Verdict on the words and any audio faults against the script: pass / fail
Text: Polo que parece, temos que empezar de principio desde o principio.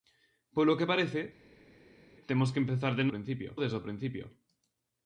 pass